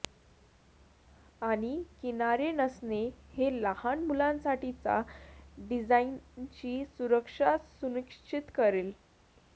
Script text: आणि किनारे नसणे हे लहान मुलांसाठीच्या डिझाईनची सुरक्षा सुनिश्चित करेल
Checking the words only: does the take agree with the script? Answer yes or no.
yes